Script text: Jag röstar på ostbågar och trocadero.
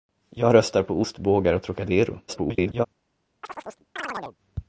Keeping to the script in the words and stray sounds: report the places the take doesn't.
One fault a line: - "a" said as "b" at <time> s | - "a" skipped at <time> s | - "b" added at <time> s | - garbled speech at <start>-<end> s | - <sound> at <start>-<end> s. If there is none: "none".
- garbled speech at 2.3-2.9 s
- chirp at 3.4-4.4 s